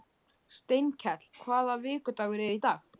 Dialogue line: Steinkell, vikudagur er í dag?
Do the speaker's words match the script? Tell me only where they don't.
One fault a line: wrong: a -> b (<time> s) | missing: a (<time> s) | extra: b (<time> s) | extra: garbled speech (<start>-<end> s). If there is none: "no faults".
extra: hvaða (1.4 s)